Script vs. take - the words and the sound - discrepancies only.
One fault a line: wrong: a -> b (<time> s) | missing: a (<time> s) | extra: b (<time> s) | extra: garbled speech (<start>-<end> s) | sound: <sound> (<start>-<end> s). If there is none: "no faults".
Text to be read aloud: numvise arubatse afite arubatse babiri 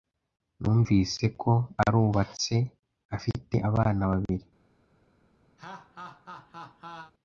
extra: ko (1.4 s)
wrong: arubatse -> abana (3.7 s)
sound: laugh (5.6-7.1 s)